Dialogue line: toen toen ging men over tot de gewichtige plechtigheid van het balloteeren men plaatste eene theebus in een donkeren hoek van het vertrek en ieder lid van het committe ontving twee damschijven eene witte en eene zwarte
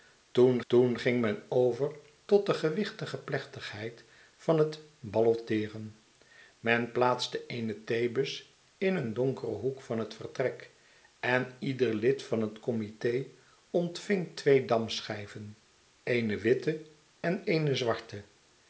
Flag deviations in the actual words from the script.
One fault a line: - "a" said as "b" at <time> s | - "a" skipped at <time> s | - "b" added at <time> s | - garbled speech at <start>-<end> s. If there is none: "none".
none